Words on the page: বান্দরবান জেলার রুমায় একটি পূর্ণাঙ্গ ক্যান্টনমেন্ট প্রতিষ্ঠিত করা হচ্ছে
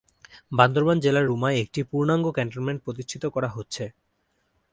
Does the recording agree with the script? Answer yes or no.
yes